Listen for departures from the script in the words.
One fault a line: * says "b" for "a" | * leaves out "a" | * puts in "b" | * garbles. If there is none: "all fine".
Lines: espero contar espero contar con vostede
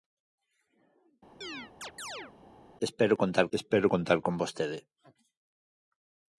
all fine